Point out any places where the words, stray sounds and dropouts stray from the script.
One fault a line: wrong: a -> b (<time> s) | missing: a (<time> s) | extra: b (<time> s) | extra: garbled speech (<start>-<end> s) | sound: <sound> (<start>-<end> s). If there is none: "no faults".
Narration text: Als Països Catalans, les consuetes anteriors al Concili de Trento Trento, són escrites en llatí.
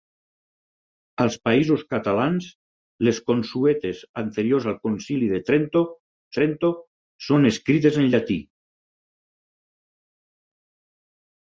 no faults